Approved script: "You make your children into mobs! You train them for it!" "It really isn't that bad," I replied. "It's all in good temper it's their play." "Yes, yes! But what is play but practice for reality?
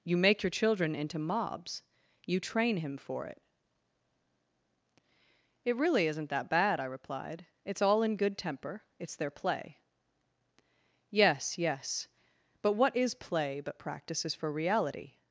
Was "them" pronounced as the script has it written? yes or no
no